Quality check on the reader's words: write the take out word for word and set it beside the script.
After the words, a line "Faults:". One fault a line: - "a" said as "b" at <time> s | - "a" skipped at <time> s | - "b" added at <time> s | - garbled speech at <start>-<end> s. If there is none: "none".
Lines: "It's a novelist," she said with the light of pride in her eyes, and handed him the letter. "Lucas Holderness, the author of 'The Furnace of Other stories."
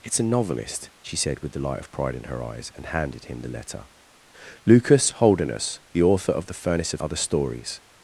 "It's a novelist," she said with the light of pride in her eyes, and handed him the letter. "Lucas Holderness, the author of 'The Furnace of Other stories."
Faults:
none